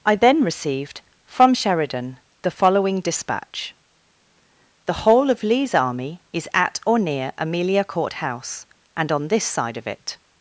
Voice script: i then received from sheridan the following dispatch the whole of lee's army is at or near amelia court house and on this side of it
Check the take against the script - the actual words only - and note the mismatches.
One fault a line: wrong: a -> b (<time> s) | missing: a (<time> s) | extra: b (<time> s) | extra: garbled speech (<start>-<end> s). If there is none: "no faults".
no faults